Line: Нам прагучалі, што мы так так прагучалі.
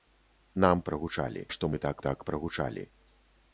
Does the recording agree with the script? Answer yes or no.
yes